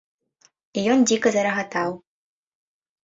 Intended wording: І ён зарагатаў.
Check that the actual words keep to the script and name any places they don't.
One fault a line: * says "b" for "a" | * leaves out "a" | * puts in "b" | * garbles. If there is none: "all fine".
* puts in "дзіка"